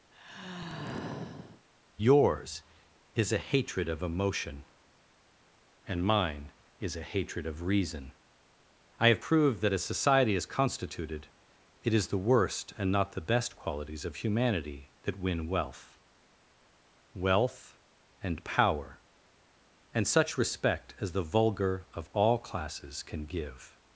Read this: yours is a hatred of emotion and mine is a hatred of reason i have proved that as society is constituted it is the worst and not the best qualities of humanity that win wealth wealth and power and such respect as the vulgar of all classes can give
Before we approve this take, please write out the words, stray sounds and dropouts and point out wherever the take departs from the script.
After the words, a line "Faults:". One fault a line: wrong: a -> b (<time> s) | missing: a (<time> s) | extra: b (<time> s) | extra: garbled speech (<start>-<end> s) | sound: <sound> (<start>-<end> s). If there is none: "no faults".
yours is a hatred of emotion and mine is a hatred of reason i have proved that as society is constituted it is the worst and not the best qualities of humanity that win wealth wealth and power and such respect as the vulgar of all classes can give
Faults:
sound: sigh (0.1-1.7 s)